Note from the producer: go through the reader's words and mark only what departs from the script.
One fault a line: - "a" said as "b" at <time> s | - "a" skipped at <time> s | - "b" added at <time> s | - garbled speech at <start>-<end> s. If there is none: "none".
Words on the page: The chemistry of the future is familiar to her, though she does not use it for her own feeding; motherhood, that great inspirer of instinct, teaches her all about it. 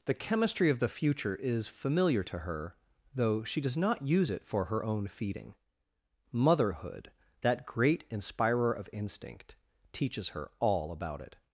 none